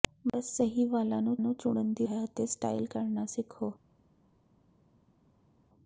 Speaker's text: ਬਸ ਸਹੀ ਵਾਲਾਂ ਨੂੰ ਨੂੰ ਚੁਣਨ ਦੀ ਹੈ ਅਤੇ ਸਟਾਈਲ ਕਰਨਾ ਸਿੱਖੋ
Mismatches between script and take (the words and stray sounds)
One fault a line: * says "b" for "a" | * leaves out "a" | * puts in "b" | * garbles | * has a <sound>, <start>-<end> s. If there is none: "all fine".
all fine